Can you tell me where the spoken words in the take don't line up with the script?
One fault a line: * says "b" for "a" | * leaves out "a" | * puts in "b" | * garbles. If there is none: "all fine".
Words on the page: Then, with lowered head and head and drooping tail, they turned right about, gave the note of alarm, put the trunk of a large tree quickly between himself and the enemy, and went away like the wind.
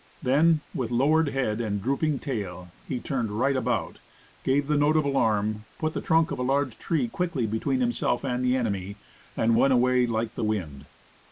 * leaves out "head and"
* says "he" for "they"